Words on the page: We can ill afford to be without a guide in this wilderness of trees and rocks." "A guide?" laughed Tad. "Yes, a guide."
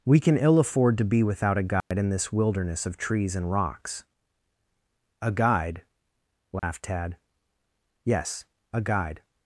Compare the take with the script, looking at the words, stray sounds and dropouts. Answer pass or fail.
fail